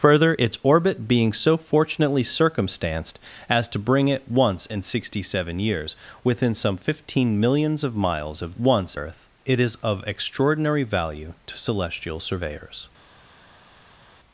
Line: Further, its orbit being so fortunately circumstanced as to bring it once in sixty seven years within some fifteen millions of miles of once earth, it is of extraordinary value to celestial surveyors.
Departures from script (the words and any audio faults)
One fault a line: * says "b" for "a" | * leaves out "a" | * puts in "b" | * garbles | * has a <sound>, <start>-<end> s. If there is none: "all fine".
all fine